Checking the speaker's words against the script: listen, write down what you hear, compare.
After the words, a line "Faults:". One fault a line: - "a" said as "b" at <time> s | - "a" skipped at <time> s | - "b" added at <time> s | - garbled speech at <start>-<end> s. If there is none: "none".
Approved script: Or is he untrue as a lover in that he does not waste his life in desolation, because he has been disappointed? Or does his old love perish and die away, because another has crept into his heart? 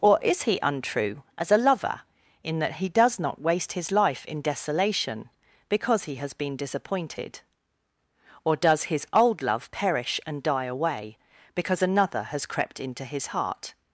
Or is he untrue as a lover in that he does not waste his life in desolation, because he has been disappointed? Or does his old love perish and die away, because another has crept into his heart?
Faults:
none